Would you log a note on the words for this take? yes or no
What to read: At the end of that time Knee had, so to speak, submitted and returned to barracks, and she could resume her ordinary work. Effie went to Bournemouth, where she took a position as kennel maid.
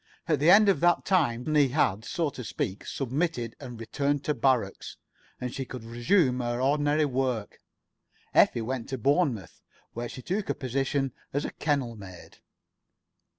no